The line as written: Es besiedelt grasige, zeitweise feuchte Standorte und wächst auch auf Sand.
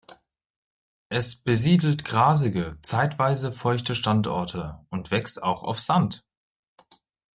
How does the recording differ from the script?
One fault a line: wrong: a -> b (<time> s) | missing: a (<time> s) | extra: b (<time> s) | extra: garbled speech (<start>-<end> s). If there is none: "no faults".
no faults